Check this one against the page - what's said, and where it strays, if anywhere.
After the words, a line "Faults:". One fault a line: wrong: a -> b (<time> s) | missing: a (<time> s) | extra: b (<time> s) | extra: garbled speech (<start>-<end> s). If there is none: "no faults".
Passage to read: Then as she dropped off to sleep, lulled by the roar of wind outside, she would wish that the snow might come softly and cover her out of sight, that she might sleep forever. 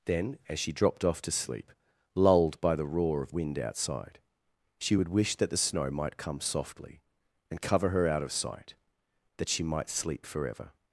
Then as she dropped off to sleep, lulled by the roar of wind outside, she would wish that the snow might come softly and cover her out of sight, that she might sleep forever.
Faults:
no faults